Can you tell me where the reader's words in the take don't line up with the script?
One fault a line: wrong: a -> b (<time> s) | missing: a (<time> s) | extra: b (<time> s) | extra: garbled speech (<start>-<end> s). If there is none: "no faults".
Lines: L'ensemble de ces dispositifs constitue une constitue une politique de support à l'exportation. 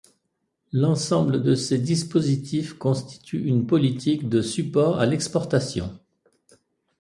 missing: constitue une (3.7 s)